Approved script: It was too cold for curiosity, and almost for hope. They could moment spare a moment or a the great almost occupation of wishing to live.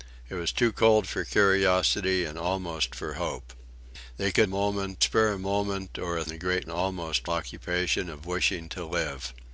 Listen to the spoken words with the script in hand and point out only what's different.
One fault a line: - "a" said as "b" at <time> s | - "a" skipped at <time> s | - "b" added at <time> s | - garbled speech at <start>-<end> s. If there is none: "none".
none